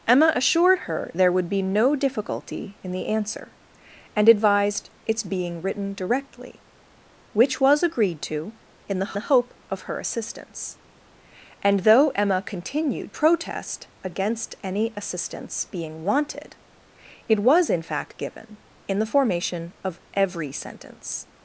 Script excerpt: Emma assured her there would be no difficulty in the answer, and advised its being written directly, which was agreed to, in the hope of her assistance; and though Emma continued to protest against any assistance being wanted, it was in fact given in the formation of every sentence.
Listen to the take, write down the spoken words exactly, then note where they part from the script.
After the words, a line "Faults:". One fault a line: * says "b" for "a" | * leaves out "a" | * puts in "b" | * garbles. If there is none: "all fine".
Emma assured her there would be no difficulty in the answer, and advised its being written directly, which was agreed to, in the the hope of her assistance; and though Emma continued protest against any assistance being wanted, it was in fact given in the formation of every sentence.
Faults:
* puts in "the"
* leaves out "to"